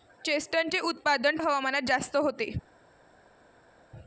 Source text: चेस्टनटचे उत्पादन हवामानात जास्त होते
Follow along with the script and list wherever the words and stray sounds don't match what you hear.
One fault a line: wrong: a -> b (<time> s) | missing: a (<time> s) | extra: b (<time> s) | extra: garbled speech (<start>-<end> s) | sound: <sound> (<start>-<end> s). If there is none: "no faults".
no faults